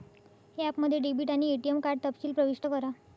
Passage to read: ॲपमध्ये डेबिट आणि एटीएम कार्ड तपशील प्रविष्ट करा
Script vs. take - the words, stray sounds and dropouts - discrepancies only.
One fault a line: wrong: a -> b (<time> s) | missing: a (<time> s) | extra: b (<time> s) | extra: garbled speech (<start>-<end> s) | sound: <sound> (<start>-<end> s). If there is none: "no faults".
no faults